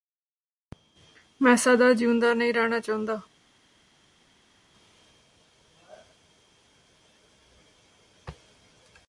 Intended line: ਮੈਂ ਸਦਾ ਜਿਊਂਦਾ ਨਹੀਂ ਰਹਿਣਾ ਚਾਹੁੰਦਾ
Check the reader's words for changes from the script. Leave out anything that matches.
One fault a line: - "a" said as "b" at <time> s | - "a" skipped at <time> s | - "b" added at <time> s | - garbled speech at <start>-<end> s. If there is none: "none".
none